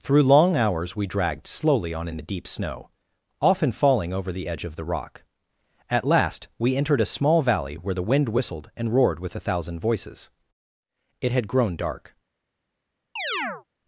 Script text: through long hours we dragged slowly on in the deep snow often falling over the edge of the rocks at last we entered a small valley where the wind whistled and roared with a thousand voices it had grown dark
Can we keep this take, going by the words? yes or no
no